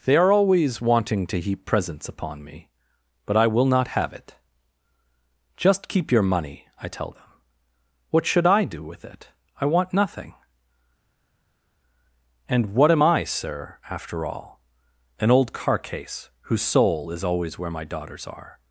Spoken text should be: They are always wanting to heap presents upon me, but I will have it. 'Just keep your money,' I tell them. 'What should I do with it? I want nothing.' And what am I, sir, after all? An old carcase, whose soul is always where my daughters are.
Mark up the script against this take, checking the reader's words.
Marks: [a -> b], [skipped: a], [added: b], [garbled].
They are always wanting to heap presents upon me, but I will [added: not] have it. 'Just keep your money,' I tell them. 'What should I do with it? I want nothing.' And what am I, sir, after all? An old carcase, whose soul is always where my daughters are.